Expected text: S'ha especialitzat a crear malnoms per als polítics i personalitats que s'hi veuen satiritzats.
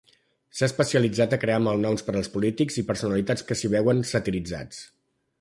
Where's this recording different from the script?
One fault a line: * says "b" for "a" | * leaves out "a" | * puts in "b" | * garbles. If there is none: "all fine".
all fine